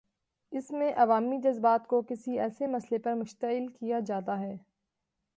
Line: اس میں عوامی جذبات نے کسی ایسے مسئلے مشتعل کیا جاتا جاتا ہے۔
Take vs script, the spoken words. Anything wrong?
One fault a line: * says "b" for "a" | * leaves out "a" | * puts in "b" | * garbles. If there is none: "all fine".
* says "کو" for "نے"
* puts in "پر"
* leaves out "جاتا"